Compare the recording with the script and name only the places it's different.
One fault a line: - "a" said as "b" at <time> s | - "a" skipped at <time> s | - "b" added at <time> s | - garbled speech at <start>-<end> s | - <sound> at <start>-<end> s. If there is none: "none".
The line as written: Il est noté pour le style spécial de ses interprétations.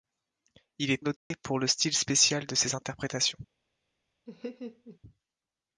- dropout at 1.2-1.3 s
- laugh at 4.3-5.0 s